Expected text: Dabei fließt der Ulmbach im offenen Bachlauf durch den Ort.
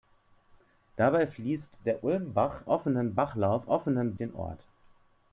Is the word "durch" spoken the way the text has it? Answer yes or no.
no